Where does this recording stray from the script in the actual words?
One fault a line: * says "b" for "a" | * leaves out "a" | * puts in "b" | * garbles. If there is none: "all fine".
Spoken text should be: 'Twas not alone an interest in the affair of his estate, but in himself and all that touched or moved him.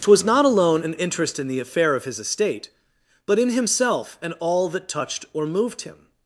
all fine